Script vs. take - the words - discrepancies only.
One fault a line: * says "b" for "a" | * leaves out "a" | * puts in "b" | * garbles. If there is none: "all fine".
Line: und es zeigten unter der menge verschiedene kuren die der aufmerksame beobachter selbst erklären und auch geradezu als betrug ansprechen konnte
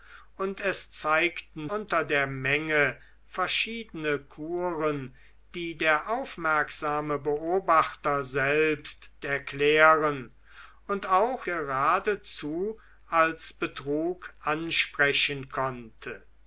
all fine